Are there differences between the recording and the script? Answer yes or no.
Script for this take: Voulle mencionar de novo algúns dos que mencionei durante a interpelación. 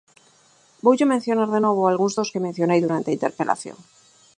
no